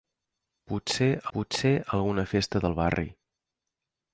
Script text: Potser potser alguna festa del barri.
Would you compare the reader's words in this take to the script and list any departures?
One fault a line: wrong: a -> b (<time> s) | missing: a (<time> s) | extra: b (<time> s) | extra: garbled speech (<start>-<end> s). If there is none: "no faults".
no faults